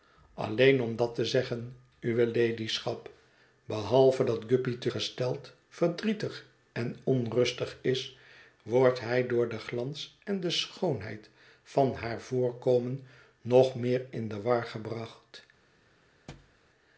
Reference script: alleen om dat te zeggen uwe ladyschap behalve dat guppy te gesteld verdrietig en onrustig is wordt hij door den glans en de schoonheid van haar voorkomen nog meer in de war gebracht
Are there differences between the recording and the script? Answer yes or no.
no